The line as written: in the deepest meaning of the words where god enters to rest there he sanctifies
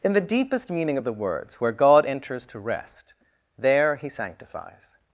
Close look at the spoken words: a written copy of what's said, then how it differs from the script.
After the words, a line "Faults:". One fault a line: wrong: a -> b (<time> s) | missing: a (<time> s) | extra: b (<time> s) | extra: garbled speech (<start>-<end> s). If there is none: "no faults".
in the deepest meaning of the words where god enters to rest there he sanctifies
Faults:
no faults